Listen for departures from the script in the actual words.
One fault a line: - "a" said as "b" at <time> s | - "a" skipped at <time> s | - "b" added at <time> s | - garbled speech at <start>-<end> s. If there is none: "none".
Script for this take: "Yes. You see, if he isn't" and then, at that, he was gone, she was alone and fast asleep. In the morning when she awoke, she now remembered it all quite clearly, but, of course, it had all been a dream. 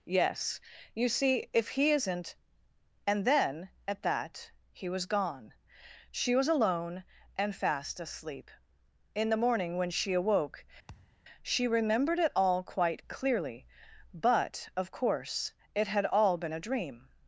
- "now" skipped at 11.7 s